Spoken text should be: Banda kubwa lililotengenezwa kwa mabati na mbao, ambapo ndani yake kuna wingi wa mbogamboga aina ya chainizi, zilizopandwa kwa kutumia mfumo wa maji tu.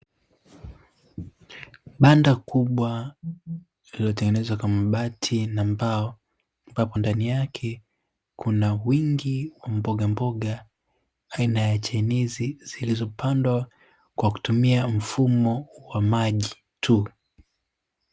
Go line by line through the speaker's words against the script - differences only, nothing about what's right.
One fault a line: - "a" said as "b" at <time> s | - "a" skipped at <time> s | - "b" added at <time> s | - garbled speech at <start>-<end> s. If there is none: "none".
none